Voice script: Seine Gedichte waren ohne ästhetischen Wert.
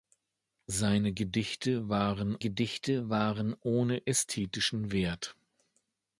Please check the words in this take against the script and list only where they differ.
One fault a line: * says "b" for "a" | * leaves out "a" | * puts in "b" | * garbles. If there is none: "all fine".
* puts in "Gedichte waren"